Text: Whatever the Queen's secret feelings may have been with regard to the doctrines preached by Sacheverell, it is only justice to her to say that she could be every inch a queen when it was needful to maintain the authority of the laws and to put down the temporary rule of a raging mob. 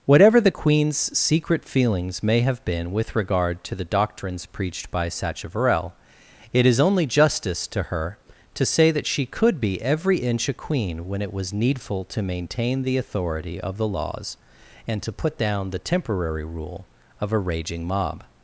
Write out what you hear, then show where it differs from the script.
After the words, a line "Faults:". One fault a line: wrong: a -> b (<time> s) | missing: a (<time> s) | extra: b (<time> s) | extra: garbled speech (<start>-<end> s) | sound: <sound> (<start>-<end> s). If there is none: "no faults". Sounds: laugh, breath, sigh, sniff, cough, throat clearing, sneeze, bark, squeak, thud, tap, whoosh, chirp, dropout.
Whatever the Queen's secret feelings may have been with regard to the doctrines preached by Sacheverell, it is only justice to her to say that she could be every inch a queen when it was needful to maintain the authority of the laws and to put down the temporary rule of a raging mob.
Faults:
no faults